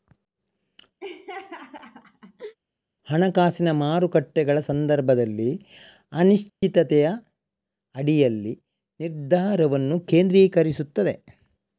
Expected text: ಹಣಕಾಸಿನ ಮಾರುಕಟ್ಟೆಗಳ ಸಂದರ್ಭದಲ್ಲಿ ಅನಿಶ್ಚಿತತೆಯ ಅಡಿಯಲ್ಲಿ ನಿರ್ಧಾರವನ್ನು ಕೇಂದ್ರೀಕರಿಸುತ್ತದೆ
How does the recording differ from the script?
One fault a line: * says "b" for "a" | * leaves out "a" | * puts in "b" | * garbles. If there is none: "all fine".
all fine